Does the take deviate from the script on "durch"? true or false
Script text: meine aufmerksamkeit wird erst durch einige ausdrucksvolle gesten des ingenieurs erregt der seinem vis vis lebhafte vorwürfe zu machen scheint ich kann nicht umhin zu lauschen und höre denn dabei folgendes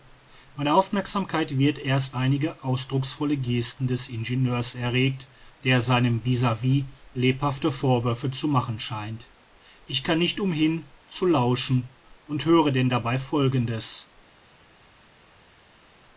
true